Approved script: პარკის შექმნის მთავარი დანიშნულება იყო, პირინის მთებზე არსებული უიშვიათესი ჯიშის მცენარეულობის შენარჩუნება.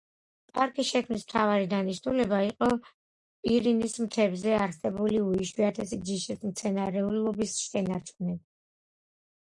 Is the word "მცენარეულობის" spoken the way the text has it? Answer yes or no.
yes